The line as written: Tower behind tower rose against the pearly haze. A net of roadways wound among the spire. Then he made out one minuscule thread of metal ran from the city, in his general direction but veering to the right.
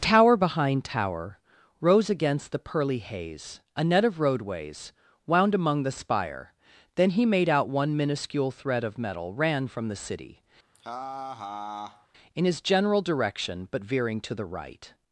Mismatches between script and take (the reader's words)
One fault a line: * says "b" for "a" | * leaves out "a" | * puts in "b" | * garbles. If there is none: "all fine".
all fine